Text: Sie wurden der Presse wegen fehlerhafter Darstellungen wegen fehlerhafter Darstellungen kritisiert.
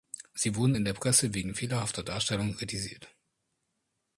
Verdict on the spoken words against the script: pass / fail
fail